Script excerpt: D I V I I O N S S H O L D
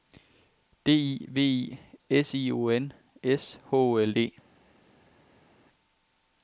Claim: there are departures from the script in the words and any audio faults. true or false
true